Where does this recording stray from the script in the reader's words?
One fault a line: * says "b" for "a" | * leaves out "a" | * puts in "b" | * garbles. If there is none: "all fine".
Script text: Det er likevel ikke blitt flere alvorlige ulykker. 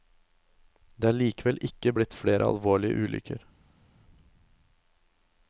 all fine